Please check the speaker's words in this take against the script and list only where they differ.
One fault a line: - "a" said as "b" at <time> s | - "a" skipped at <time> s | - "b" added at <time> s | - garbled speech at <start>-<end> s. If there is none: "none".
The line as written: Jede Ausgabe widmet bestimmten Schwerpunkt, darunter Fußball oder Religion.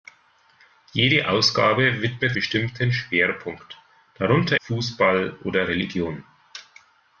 none